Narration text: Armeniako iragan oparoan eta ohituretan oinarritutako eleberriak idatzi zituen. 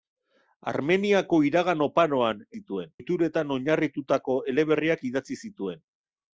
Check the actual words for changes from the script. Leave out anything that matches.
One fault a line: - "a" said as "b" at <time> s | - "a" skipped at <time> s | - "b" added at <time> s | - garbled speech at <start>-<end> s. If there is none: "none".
- "eta" said as "zituen" at 2.6 s